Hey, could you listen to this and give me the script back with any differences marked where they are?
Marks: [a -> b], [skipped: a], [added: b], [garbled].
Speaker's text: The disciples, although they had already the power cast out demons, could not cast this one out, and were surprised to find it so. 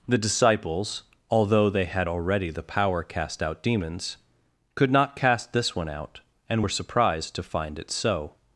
The disciples, although they had already the power cast out demons, could not cast this one out, and were surprised to find it so.